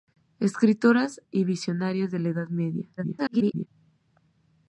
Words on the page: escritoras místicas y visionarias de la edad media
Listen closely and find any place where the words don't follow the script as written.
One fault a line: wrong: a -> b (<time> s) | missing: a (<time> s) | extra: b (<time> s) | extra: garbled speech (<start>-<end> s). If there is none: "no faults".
missing: místicas (1.2 s)
extra: garbled speech (3.0-3.7 s)